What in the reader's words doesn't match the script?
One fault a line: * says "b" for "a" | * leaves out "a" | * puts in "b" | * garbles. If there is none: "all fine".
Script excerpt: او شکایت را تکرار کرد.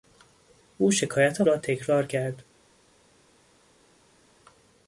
all fine